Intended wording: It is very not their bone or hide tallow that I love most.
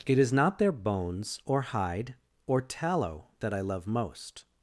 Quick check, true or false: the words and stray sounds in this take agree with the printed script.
false